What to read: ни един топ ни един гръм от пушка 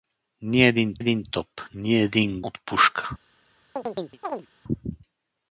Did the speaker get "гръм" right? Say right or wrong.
wrong